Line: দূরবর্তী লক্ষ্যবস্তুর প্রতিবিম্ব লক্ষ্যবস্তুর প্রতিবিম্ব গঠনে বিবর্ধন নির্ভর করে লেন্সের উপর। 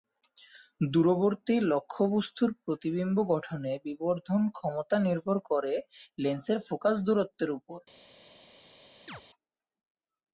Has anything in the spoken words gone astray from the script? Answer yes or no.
yes